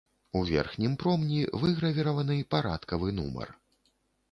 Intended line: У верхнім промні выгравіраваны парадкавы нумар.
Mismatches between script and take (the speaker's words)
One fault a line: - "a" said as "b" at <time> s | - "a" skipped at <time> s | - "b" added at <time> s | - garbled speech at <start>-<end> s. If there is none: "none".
none